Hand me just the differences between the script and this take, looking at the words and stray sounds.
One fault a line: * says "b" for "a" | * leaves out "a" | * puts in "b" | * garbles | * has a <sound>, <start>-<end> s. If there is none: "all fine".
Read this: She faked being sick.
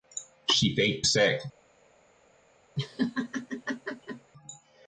* leaves out "being"
* has a laugh, 2.8-4.3 s